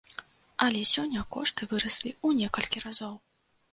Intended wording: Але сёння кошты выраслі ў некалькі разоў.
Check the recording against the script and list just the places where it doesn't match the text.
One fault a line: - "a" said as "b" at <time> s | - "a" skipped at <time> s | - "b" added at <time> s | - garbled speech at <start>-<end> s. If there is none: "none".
none